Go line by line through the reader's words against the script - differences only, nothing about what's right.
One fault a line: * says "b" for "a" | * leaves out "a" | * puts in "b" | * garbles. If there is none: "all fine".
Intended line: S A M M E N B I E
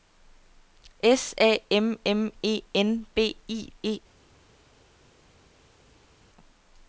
all fine